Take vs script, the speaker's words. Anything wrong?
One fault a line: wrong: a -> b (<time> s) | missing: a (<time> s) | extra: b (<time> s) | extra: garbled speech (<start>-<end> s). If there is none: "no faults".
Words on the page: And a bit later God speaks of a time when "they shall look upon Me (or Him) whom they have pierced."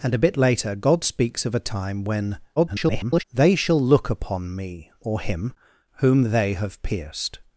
extra: garbled speech (2.6-3.2 s)